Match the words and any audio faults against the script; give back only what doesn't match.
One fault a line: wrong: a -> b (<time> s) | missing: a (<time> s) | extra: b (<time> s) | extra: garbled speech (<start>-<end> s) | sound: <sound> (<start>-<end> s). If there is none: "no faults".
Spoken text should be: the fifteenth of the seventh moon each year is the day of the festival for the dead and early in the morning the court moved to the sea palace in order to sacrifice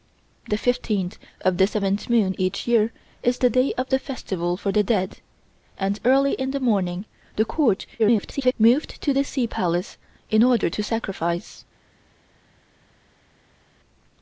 extra: garbled speech (8.0-8.5 s)